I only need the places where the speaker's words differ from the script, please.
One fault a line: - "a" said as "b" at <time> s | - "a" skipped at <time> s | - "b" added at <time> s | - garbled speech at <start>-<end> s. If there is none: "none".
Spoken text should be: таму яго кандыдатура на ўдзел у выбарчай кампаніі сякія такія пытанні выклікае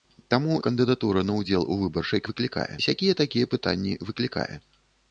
- "яго" skipped at 0.5 s
- "кампаніі" said as "выклікае" at 2.3 s